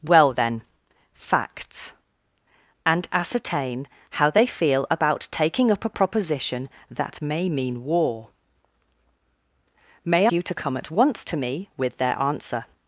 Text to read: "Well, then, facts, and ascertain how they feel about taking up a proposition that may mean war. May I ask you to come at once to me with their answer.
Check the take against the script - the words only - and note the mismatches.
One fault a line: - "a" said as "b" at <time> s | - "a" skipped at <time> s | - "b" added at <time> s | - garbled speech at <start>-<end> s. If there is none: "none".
- "I ask" skipped at 10.3 s